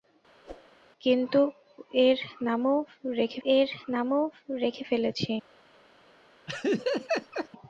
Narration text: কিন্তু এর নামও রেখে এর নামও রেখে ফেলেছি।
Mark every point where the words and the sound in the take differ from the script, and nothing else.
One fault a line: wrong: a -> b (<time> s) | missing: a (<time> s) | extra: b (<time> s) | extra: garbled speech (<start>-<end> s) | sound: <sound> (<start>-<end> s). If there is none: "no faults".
sound: whoosh (0.4-0.7 s)
sound: laugh (6.5-7.5 s)